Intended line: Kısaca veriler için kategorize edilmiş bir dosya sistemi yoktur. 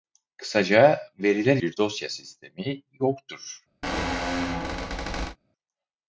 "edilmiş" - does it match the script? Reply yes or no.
no